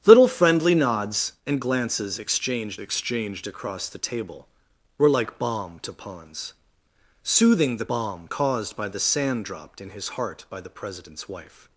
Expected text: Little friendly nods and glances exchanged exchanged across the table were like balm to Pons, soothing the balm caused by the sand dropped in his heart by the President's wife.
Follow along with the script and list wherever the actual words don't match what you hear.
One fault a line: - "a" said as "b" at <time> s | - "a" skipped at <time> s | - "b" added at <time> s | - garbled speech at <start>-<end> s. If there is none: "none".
none